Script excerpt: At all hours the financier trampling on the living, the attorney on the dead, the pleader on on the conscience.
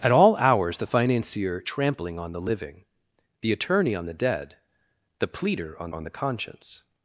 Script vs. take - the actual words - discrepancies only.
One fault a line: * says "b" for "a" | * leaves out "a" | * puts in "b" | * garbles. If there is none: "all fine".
all fine